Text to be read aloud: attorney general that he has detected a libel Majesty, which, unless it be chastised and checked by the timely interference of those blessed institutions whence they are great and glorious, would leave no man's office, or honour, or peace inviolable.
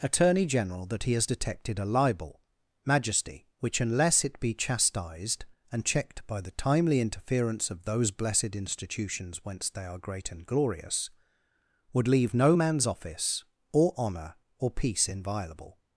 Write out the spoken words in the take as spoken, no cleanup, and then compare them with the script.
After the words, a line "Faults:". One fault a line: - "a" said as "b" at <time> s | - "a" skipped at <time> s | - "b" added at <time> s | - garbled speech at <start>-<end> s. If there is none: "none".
attorney general that he has detected a libel Majesty, which, unless it be chastised and checked by the timely interference of those blessed institutions whence they are great and glorious, would leave no man's office, or honour, or peace inviolable.
Faults:
none